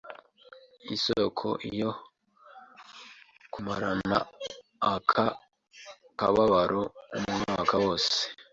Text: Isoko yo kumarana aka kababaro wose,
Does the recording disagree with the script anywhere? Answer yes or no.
yes